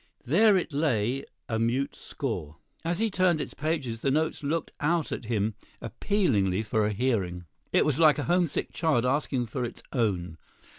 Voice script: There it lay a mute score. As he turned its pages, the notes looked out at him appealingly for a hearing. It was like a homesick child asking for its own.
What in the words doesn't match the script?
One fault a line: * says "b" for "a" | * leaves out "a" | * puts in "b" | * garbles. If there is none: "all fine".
all fine